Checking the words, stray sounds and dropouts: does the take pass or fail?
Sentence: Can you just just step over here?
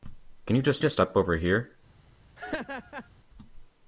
fail